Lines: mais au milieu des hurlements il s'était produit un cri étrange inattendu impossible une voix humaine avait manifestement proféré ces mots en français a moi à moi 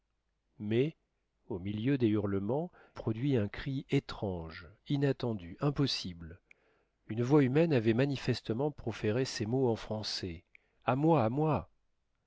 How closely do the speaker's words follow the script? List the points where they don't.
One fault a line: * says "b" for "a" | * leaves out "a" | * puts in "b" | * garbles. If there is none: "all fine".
* leaves out "il s'était"